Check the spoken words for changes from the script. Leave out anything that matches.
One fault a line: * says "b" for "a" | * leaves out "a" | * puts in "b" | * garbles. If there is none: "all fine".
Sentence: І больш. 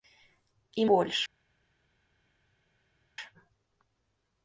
all fine